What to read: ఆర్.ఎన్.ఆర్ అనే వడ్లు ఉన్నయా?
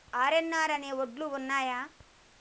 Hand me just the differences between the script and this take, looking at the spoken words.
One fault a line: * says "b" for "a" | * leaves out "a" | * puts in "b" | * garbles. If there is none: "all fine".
all fine